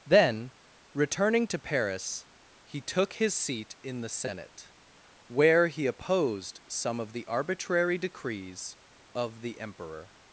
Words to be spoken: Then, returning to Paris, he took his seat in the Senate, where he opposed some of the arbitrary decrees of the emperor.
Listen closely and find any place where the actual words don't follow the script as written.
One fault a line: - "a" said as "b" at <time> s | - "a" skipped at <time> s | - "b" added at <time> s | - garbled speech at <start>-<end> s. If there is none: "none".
none